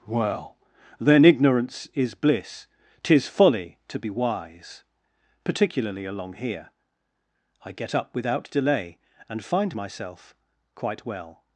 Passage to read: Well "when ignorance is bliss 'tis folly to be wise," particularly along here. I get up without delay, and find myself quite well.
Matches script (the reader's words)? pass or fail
fail